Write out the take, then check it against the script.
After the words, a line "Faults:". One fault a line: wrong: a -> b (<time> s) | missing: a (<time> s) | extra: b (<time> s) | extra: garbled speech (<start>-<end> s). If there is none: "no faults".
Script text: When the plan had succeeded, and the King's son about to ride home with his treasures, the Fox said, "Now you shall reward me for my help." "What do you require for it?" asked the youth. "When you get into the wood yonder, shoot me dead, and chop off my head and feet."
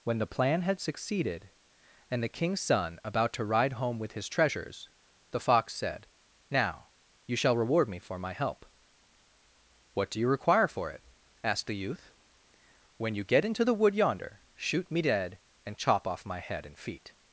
When the plan had succeeded, and the King's son about to ride home with his treasures, the Fox said, "Now you shall reward me for my help." "What do you require for it?" asked the youth. "When you get into the wood yonder, shoot me dead, and chop off my head and feet."
Faults:
no faults